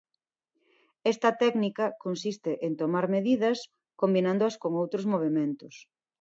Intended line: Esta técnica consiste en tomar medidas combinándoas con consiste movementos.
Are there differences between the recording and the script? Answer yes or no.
yes